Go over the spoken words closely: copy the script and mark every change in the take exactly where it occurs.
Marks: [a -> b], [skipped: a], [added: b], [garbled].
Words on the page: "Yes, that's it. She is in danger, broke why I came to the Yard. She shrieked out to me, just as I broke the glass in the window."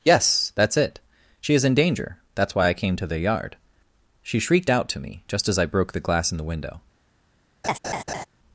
"Yes, that's it. She is in danger, [broke -> that's] why I came to the Yard. She shrieked out to me, just as I broke the glass in the window."